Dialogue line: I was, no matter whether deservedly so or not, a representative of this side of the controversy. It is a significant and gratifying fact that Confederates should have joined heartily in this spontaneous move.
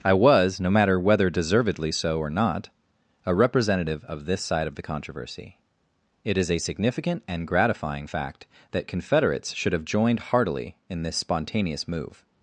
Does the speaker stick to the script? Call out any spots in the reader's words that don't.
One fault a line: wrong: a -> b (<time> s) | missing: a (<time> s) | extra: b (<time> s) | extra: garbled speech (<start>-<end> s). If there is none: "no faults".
no faults